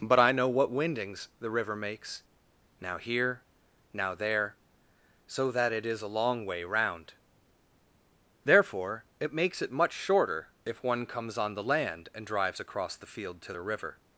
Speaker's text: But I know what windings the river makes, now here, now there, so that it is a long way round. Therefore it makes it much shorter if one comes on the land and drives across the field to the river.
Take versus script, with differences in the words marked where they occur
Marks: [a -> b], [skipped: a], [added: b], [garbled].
But I know what windings the river makes, now here, now there, so that it is a long way round. Therefore it makes it much shorter if one comes on the land and drives across the field to the river.